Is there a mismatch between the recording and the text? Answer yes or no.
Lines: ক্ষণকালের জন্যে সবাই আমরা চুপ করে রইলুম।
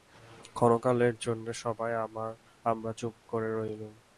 no